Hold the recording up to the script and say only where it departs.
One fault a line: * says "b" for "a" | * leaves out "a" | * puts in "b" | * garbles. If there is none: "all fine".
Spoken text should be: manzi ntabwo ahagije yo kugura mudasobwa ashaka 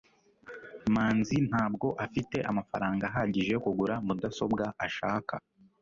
* puts in "afite amafaranga"